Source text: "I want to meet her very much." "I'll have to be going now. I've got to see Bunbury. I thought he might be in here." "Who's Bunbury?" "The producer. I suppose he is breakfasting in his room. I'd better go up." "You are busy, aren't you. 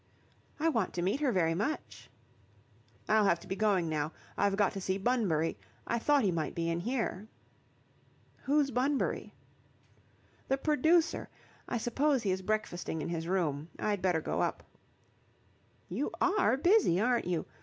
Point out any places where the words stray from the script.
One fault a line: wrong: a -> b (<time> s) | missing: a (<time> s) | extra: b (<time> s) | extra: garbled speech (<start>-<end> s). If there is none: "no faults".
no faults